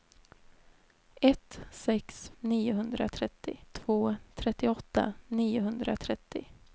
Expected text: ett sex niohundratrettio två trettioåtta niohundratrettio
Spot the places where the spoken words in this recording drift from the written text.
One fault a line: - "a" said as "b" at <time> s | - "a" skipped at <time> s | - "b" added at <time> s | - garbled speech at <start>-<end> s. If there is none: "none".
none